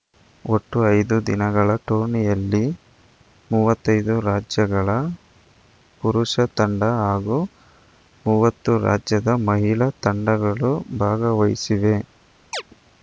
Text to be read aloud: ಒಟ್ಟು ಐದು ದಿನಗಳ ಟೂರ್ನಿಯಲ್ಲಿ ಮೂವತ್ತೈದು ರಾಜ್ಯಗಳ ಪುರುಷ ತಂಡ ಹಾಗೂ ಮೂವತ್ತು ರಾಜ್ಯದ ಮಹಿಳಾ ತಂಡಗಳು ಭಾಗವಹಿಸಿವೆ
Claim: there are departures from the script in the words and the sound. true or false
true